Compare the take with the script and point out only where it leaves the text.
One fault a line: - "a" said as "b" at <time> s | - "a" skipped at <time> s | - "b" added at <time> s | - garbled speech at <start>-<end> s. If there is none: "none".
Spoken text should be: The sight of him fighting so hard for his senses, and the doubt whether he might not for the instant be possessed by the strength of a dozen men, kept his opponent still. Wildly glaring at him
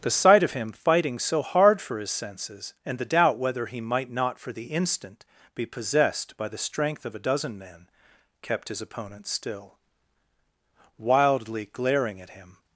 none